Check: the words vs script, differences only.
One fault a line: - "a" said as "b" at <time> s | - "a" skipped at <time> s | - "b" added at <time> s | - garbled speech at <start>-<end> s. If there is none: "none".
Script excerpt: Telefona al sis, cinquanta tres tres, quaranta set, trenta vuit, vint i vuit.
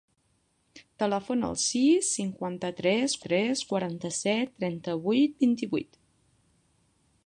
none